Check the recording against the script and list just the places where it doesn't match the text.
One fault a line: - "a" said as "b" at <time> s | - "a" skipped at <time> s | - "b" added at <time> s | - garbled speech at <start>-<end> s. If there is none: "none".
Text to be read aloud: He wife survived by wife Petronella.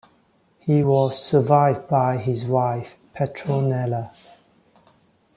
- "wife" said as "was" at 0.8 s
- "his" added at 2.2 s